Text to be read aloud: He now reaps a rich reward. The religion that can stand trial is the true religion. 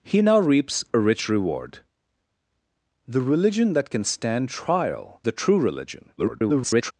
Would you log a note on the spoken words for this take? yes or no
yes